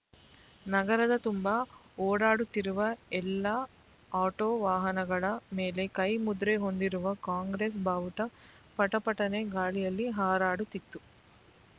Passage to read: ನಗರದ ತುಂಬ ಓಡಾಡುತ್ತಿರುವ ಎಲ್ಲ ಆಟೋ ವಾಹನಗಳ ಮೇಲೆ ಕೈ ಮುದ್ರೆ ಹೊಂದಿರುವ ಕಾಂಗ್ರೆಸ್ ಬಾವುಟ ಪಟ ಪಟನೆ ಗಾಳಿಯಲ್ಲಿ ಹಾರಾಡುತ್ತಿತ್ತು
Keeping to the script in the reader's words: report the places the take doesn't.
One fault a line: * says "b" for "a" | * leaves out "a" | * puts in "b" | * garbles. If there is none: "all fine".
all fine